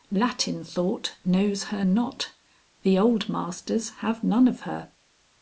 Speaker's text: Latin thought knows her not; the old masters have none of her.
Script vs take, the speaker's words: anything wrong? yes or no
no